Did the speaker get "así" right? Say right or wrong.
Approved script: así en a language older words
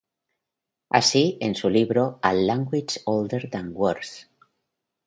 right